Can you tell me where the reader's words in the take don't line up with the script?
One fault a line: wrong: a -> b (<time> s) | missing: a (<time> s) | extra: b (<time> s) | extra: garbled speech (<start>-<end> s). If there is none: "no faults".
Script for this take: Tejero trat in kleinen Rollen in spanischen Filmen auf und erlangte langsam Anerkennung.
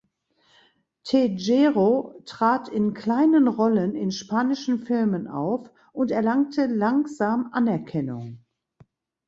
no faults